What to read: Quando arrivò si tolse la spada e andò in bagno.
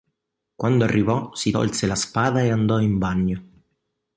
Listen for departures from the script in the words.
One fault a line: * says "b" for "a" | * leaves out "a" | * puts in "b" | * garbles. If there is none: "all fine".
all fine